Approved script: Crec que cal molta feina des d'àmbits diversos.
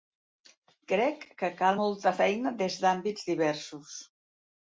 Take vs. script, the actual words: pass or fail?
pass